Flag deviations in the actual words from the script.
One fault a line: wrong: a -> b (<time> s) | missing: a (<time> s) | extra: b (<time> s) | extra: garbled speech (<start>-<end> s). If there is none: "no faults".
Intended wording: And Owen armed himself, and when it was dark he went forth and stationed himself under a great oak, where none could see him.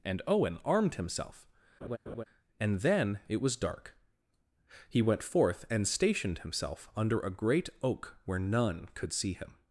wrong: when -> then (2.8 s)